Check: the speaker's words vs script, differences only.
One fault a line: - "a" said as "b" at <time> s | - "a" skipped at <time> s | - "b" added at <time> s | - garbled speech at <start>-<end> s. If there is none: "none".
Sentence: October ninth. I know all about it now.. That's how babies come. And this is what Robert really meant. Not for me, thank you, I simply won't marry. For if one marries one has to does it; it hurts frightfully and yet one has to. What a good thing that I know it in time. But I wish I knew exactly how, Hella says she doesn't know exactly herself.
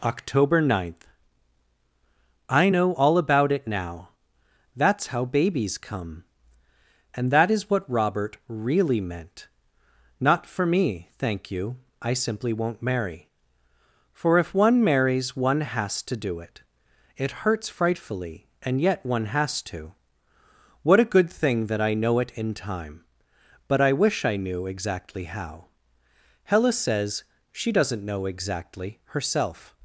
- "this" said as "that" at 7.3 s
- "does" said as "do" at 16.2 s